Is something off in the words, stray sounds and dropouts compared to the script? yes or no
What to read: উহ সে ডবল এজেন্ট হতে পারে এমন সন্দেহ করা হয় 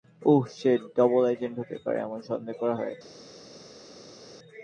no